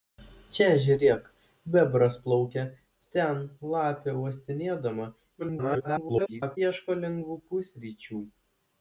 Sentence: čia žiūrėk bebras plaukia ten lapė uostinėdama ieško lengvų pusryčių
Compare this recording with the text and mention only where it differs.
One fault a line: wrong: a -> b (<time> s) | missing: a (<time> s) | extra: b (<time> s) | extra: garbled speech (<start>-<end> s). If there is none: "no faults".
extra: garbled speech (5.4-6.6 s)